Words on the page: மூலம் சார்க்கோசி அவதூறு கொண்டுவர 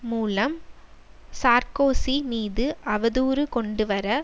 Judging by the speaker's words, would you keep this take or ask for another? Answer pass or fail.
fail